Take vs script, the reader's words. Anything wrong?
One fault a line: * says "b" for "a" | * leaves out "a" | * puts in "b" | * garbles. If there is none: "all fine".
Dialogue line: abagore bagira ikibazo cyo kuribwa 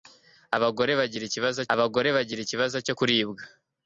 * puts in "abagore bagira ikibazo"